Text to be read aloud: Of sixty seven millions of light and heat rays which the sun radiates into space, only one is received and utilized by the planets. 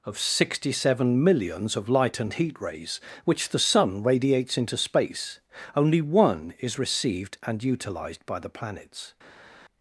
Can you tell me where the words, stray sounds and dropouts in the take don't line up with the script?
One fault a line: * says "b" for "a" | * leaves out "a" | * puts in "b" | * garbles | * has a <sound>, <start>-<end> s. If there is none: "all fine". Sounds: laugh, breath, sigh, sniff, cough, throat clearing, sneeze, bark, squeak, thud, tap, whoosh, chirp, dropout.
all fine